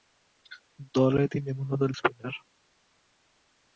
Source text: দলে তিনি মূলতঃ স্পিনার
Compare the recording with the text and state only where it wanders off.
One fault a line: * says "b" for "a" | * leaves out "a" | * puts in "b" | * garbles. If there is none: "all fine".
all fine